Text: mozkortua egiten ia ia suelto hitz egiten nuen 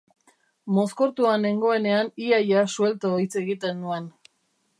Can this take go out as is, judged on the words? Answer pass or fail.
fail